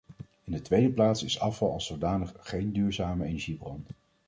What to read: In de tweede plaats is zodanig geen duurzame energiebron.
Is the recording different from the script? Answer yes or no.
yes